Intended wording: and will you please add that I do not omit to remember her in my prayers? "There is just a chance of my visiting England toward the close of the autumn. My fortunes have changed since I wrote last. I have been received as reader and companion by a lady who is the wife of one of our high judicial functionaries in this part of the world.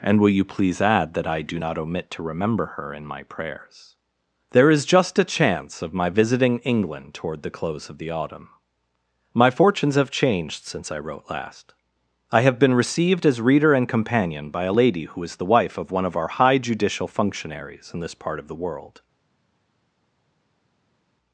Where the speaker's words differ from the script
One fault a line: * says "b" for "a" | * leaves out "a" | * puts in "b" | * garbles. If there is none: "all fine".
all fine